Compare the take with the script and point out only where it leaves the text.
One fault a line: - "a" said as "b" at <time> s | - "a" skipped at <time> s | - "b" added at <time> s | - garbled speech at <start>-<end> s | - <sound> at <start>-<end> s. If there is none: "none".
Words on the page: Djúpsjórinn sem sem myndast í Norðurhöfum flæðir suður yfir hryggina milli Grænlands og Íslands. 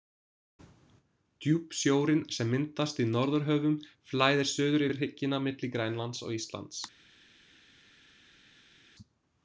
- "sem" skipped at 2.5 s